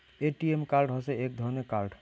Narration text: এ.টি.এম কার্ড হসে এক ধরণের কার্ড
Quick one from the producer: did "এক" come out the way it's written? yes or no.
yes